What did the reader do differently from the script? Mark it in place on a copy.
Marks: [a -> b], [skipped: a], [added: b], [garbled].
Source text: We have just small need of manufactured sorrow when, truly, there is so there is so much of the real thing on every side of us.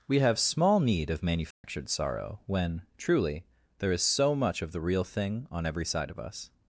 We have [skipped: just] small need of manufactured sorrow when, truly, there is so [skipped: there is so] much of the real thing on every side of us.